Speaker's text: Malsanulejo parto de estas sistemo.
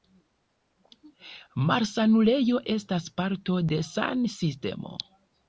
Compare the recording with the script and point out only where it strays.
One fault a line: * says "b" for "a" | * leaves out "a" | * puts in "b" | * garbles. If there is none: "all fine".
* puts in "estas"
* says "san" for "estas"